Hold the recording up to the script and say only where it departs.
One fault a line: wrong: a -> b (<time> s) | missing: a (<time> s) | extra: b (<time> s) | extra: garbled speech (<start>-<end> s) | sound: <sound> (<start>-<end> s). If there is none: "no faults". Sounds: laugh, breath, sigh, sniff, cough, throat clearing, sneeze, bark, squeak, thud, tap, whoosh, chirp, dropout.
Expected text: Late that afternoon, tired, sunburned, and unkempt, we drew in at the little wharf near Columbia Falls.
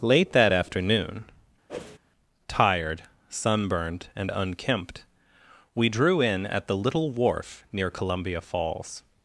sound: whoosh (1.7-2.0 s)